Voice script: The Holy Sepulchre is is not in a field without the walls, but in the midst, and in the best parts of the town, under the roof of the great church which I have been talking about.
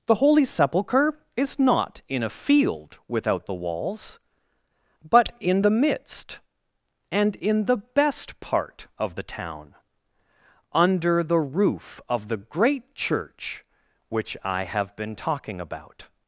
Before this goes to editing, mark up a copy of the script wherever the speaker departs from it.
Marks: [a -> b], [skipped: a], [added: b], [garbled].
The Holy Sepulchre is [skipped: is] not in a field without the walls, but in the midst, and in the best [parts -> part] of the town, under the roof of the great church which I have been talking about.